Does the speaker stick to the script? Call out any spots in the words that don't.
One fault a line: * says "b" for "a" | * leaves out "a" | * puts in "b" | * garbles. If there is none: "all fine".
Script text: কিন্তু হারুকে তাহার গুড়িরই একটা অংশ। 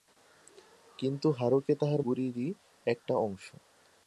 all fine